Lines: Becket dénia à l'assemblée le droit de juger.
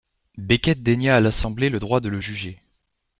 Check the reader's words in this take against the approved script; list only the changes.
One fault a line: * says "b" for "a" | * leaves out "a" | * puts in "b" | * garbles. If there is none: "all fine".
* puts in "le"